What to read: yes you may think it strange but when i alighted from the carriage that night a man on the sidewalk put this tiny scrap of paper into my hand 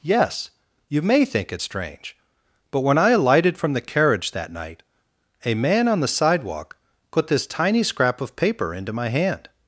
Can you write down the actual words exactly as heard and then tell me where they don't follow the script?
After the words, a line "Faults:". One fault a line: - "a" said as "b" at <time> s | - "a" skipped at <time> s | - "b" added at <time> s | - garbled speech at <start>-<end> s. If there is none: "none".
yes you may think it strange but when i alighted from the carriage that night a man on the sidewalk put this tiny scrap of paper into my hand
Faults:
none